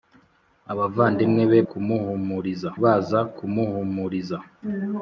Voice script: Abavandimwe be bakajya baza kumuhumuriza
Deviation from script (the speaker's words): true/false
true